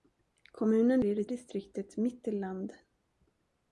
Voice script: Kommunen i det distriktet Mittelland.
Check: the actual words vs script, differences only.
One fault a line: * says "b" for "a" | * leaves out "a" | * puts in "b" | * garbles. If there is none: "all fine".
all fine